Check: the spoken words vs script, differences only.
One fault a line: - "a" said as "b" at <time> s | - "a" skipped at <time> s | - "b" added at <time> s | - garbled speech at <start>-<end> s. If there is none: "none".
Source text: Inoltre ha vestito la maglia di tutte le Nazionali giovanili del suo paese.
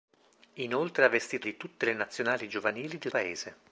- "la maglia" skipped at 1.5 s
- "suo" skipped at 3.1 s